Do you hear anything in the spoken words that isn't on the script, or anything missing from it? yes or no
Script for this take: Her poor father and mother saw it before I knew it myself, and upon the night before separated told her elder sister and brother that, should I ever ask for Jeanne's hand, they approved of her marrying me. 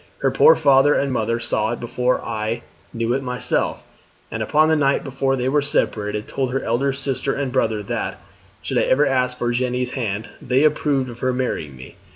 yes